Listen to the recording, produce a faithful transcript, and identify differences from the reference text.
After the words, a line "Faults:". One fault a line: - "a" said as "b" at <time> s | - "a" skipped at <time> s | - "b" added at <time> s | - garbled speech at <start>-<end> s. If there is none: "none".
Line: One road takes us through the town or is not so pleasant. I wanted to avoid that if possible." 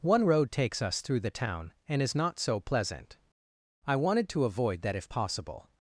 One road takes us through the town and is not so pleasant. I wanted to avoid that if possible."
Faults:
- "or" said as "and" at 1.9 s